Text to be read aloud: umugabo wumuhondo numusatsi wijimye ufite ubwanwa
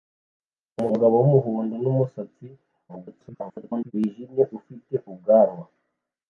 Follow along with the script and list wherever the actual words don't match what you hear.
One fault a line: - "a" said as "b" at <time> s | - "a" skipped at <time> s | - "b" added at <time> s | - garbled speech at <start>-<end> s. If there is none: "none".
- garbled speech at 2.9-3.9 s